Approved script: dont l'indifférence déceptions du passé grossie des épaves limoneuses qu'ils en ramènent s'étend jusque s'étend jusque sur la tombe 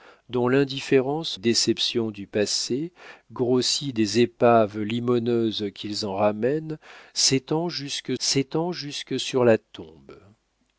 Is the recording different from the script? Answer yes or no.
no